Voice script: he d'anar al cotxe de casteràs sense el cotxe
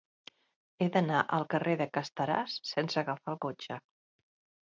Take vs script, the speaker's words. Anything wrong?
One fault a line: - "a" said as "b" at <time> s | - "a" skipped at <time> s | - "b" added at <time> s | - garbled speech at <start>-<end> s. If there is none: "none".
- "cotxe" said as "carrer" at 1.5 s
- "agafar" added at 3.0 s